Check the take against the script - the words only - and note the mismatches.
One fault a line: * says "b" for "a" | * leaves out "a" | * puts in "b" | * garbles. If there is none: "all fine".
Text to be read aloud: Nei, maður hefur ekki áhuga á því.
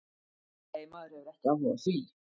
all fine